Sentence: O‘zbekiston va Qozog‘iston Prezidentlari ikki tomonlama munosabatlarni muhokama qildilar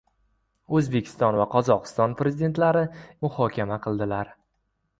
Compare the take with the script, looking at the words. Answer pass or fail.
fail